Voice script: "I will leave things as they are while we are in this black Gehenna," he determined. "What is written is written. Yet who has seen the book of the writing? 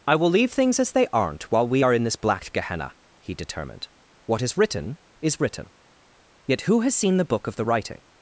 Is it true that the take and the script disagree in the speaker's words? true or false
true